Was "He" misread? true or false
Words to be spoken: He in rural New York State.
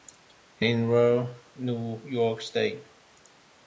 false